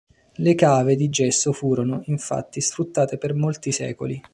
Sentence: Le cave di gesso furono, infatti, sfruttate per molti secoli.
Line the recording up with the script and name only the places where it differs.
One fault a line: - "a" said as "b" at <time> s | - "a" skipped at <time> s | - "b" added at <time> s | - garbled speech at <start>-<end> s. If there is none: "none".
none